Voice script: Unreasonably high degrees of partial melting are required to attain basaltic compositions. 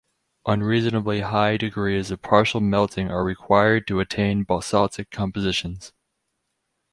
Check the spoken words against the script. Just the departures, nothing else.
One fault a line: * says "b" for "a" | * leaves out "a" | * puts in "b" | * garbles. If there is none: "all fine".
all fine